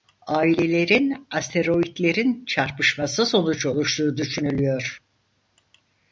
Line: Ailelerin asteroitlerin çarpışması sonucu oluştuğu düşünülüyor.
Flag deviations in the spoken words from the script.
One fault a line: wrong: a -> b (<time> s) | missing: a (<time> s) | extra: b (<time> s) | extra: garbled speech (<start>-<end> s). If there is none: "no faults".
no faults